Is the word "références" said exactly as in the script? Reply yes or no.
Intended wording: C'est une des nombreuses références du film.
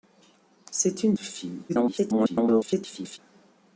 no